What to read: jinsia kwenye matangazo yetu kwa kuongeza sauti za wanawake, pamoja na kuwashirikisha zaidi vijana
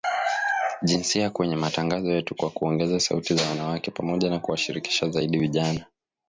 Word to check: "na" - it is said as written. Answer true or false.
true